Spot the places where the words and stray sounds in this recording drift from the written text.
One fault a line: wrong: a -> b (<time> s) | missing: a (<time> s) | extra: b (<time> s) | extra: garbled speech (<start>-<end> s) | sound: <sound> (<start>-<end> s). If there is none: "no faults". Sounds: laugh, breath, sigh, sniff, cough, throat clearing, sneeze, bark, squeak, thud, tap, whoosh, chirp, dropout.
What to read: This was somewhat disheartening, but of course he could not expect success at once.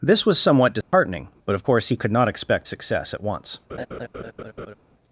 sound: dropout (0.8-0.9 s)
sound: laugh (3.7-4.8 s)